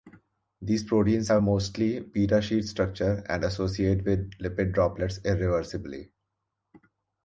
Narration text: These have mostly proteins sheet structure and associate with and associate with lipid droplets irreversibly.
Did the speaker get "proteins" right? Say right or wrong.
wrong